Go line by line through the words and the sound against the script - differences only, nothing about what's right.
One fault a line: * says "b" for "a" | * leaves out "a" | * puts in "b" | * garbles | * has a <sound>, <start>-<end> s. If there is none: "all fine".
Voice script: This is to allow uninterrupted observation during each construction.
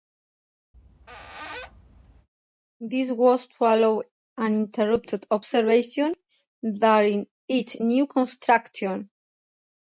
* has a squeak, 0.7-2.3 s
* says "was" for "is"
* puts in "new"